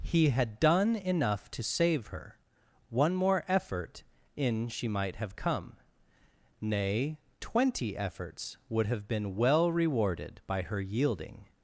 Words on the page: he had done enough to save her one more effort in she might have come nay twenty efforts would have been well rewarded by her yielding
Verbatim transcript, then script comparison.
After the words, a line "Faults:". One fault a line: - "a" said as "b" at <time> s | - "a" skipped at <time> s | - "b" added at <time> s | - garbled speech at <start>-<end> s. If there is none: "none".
he had done enough to save her one more effort in she might have come nay twenty efforts would have been well rewarded by her yielding
Faults:
none